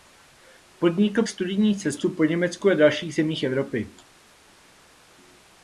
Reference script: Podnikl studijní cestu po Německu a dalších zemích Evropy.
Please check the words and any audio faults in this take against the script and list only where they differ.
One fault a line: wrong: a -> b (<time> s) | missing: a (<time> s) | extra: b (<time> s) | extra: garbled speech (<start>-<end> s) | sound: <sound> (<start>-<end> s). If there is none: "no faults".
no faults